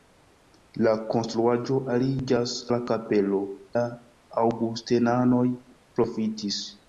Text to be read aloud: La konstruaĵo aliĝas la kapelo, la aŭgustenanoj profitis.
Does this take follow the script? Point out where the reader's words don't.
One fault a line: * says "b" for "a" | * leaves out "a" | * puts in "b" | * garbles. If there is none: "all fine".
all fine